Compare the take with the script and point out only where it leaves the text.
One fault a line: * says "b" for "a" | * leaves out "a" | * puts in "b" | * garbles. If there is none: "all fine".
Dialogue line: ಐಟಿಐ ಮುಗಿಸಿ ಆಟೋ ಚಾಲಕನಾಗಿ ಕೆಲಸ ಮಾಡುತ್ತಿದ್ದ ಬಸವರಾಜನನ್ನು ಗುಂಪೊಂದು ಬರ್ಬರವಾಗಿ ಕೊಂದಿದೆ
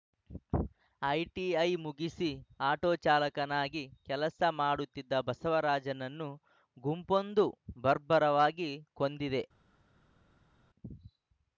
all fine